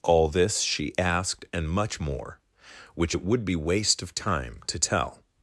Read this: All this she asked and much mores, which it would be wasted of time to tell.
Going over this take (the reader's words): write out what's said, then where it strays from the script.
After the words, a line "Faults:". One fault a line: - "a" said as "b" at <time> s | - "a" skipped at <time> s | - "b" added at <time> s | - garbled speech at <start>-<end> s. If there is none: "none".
All this she asked and much more, which it would be waste of time to tell.
Faults:
- "mores" said as "more" at 2.0 s
- "wasted" said as "waste" at 3.6 s